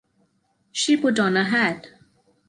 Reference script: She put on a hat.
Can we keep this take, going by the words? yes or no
yes